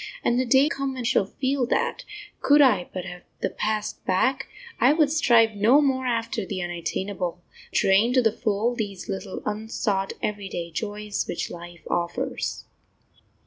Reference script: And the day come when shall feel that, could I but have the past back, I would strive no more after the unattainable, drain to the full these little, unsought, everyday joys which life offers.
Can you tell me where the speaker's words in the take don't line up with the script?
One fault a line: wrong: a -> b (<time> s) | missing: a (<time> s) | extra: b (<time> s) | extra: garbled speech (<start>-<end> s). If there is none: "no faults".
no faults